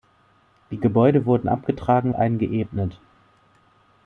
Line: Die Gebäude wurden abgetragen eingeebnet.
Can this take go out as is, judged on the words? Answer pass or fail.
pass